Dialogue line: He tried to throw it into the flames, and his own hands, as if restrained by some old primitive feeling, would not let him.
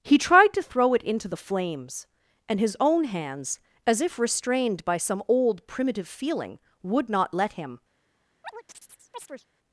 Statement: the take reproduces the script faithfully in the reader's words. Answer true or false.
true